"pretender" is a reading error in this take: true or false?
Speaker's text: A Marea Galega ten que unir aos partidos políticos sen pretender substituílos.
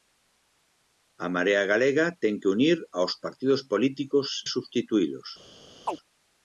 true